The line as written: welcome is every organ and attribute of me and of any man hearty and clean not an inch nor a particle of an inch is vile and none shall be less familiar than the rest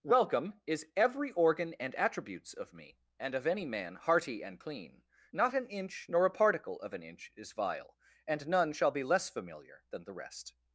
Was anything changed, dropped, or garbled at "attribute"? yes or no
yes